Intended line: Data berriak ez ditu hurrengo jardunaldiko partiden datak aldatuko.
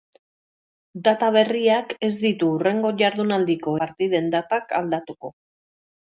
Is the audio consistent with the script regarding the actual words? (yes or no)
yes